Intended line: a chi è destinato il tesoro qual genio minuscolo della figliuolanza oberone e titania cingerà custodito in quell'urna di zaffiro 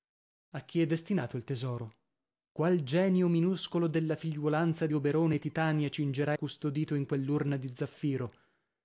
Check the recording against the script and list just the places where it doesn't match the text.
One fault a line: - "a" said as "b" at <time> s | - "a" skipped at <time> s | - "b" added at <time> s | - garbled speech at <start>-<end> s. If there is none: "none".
none